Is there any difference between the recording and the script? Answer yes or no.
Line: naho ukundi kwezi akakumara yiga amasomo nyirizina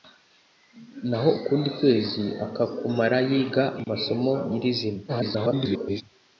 yes